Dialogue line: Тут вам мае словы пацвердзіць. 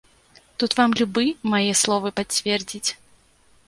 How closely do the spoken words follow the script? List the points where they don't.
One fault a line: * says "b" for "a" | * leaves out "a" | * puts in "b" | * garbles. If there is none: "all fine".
* puts in "любы"